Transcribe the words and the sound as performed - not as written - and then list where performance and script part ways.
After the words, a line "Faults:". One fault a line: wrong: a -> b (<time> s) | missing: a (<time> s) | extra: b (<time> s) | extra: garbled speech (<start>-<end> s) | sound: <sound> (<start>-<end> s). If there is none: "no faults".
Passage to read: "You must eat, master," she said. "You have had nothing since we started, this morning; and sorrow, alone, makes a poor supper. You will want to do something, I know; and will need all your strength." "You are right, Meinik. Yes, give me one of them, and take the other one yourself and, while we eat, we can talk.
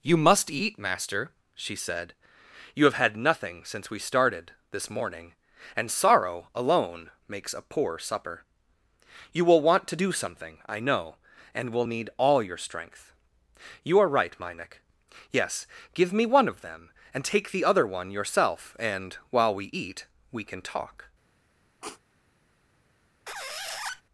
"You must eat, master," she said. "You have had nothing since we started, this morning; and sorrow, alone, makes a poor supper. You will want to do something, I know; and will need all your strength." "You are right, Meinik. Yes, give me one of them, and take the other one yourself and, while we eat, we can talk.
Faults:
sound: sniff (21.8-22.0 s)
sound: squeak (23.3-24.0 s)